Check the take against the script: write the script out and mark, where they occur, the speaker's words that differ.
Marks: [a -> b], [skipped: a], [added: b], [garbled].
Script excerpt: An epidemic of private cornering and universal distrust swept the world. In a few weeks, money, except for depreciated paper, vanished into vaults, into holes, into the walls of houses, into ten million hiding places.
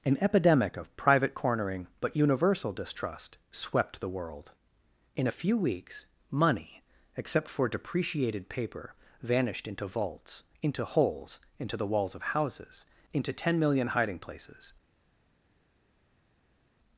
An epidemic of private cornering [and -> but] universal distrust swept the world. In a few weeks, money, except for depreciated paper, vanished into vaults, into holes, into the walls of houses, into ten million hiding places.